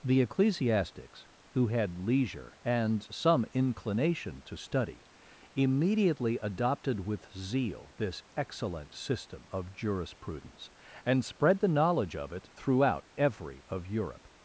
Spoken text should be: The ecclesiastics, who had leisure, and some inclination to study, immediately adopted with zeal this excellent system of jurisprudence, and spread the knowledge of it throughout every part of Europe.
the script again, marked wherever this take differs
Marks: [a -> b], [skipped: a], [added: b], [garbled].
The ecclesiastics, who had leisure, and some inclination to study, immediately adopted with zeal this excellent system of jurisprudence, and spread the knowledge of it throughout every [skipped: part] of Europe.